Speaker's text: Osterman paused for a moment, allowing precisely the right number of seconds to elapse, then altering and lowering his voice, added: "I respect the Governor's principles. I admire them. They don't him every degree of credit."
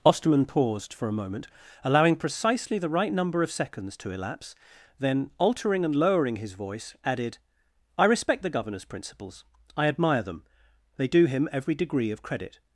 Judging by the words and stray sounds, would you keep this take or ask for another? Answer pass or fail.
fail